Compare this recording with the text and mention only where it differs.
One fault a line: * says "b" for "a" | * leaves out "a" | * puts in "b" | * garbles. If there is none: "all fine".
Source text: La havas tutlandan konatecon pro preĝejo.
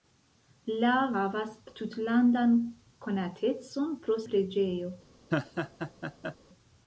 all fine